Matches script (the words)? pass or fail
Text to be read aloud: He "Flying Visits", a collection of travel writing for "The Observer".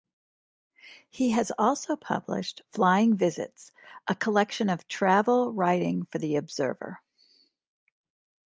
fail